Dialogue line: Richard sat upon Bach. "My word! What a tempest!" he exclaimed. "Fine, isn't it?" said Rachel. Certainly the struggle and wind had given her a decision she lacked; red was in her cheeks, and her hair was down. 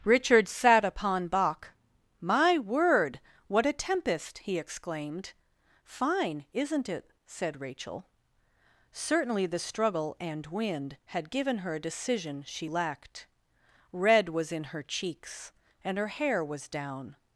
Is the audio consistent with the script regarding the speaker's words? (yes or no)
yes